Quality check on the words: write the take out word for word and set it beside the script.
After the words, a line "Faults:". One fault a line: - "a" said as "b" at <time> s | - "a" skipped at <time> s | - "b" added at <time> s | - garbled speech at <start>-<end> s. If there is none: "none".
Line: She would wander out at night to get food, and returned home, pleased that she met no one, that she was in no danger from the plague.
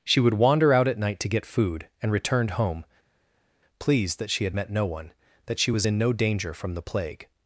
She would wander out at night to get food, and returned home, pleased that she had met no one, that she was in no danger from the plague.
Faults:
- "had" added at 4.4 s